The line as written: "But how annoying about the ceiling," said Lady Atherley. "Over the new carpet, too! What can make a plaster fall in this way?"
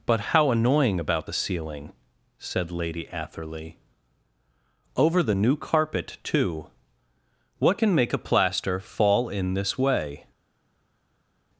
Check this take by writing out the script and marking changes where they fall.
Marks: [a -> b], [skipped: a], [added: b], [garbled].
"But how annoying about the ceiling," said Lady Atherley. "Over the new carpet, too! What can make a plaster fall in this way?"